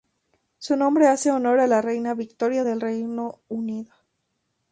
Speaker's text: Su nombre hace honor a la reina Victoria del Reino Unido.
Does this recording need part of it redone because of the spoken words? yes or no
no